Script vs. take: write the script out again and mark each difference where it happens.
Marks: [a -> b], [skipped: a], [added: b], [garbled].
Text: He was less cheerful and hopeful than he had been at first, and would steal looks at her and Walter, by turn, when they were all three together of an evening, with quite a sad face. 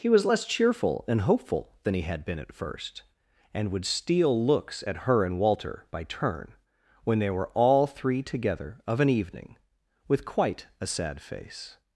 He was less cheerful and hopeful than he had been at first, and would steal looks at her and Walter, by turn, when they were all three together of an evening, with quite a sad face.